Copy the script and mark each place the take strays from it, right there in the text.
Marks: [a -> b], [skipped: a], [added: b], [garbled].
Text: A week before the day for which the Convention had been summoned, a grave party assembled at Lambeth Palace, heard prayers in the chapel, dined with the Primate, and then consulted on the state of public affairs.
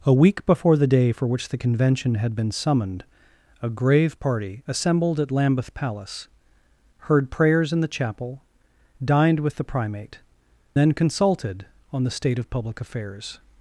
A week before the day for which the Convention had been summoned, a grave party assembled at Lambeth Palace, heard prayers in the chapel, dined with the Primate, [skipped: and] then consulted on the state of public affairs.